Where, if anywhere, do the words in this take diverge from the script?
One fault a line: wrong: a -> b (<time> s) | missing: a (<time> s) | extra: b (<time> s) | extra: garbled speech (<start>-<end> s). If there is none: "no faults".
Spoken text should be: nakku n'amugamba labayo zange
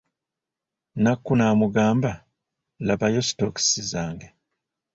extra: sitookisi (3.3 s)